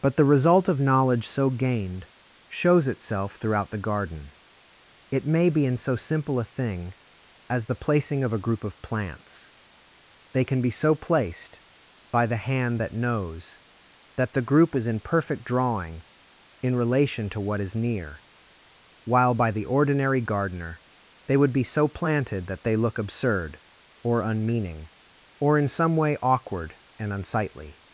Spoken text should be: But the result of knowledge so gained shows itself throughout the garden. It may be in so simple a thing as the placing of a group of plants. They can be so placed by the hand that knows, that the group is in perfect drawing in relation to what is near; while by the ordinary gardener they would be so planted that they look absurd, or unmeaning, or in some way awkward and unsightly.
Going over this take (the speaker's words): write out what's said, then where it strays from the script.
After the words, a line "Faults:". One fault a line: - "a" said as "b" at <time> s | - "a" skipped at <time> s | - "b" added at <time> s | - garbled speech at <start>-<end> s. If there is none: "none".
But the result of knowledge so gained shows itself throughout the garden. It may be in so simple a thing as the placing of a group of plants. They can be so placed by the hand that knows, that the group is in perfect drawing in relation to what is near; while by the ordinary gardener they would be so planted that they look absurd, or unmeaning, or in some way awkward and unsightly.
Faults:
none